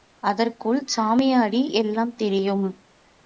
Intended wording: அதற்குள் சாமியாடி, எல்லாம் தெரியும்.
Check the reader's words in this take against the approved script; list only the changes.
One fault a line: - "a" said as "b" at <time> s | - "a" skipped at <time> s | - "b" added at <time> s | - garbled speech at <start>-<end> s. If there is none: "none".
none